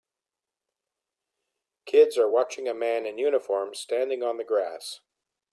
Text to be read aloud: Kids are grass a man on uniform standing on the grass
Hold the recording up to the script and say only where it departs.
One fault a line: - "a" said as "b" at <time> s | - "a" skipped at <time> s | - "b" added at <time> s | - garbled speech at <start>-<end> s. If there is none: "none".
- "grass" said as "watching" at 2.3 s
- "on" said as "in" at 3.1 s